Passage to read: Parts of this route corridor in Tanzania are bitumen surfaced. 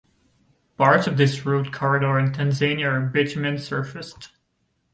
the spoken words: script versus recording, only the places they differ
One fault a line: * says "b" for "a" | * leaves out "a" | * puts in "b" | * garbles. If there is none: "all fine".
all fine